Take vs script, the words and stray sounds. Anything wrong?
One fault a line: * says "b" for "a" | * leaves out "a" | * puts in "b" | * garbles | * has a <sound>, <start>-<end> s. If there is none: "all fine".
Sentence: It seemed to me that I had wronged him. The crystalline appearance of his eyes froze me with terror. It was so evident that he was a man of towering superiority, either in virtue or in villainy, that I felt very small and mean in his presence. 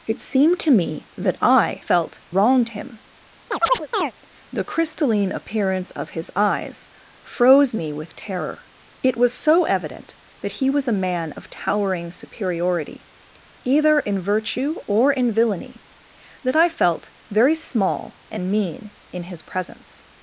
* says "felt" for "had"
* has a chirp, 3.5-4.1 s